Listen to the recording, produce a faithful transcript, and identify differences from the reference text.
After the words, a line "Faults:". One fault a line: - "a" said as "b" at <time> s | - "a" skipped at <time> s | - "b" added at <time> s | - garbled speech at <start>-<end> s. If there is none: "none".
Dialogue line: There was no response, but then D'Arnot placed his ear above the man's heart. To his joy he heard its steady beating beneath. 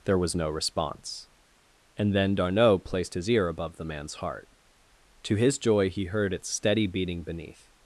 There was no response, and then D'Arnot placed his ear above the man's heart. To his joy he heard its steady beating beneath.
Faults:
- "but" said as "and" at 2.0 s